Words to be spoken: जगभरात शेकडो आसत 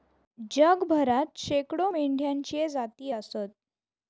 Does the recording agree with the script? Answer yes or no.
no